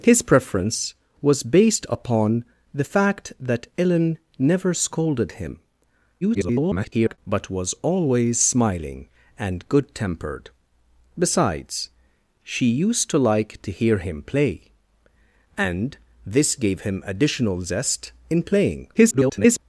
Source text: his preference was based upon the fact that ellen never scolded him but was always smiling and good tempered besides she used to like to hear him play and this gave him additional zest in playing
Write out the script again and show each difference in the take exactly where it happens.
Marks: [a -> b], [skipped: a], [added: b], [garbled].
his preference was based upon the fact that ellen never scolded him [garbled] but was always smiling and good tempered besides she used to like to hear him play and this gave him additional zest in playing [garbled]